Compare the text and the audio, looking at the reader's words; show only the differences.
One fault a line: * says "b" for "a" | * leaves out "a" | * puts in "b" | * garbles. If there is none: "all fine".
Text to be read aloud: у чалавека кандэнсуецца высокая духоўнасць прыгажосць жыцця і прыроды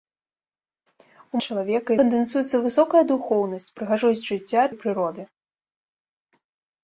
all fine